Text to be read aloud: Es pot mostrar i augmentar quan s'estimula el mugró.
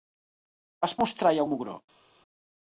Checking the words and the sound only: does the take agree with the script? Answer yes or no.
no